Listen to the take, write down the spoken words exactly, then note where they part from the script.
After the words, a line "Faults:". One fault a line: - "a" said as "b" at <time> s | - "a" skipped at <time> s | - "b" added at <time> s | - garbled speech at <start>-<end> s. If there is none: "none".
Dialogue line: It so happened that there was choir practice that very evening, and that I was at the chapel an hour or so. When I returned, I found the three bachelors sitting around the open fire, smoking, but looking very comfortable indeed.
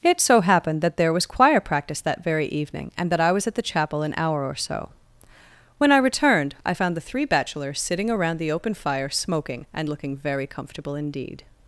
It so happened that there was choir practice that very evening, and that I was at the chapel an hour or so. When I returned, I found the three bachelors sitting around the open fire, smoking, and looking very comfortable indeed.
Faults:
- "but" said as "and" at 9.7 s